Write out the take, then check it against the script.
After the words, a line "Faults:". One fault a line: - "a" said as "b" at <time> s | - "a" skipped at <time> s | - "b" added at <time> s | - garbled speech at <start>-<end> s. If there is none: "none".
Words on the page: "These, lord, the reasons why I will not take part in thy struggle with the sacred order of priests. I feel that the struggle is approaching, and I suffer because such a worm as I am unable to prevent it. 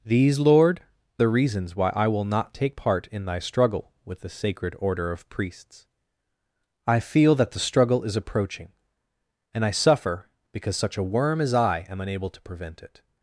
"These, lord, the reasons why I will not take part in thy struggle with the sacred order of priests. I feel that the struggle is approaching, and I suffer because such a worm as I am unable to prevent it.
Faults:
none